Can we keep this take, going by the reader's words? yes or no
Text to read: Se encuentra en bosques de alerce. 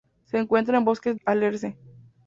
no